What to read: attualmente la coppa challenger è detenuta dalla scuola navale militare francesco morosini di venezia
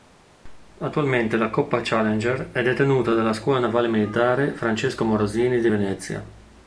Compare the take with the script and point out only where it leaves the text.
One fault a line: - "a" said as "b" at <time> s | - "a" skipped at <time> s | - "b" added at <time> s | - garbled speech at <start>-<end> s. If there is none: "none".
none